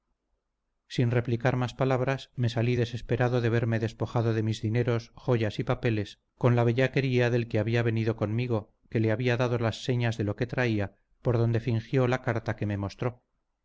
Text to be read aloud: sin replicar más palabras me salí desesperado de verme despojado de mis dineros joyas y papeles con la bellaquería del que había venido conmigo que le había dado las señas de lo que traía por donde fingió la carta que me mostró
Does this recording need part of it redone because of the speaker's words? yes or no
no